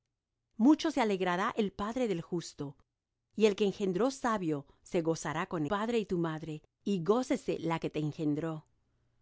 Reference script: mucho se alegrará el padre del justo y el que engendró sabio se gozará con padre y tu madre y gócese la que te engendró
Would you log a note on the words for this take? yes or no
no